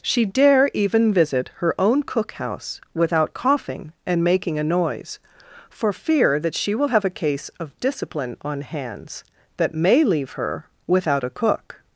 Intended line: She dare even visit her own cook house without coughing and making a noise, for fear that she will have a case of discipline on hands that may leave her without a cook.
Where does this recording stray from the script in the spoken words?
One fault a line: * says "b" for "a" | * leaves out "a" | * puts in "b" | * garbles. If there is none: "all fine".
all fine